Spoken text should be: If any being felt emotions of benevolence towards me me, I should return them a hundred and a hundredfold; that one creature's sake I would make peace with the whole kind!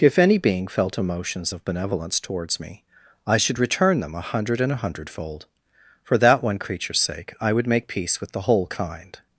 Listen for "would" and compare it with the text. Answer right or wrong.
right